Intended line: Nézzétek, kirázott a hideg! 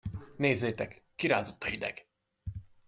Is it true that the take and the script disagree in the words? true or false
false